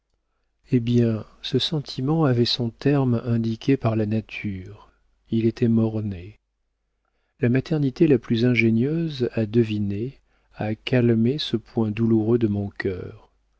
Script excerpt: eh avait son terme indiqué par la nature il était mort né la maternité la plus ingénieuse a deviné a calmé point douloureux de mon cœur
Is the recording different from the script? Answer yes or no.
yes